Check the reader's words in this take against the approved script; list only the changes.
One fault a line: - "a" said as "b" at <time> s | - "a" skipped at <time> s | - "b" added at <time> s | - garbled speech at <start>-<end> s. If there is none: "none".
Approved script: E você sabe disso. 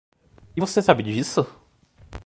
none